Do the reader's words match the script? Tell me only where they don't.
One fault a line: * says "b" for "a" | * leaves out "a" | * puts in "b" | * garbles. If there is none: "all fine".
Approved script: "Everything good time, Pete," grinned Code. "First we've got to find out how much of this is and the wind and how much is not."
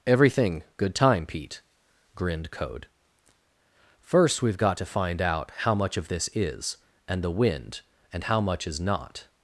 all fine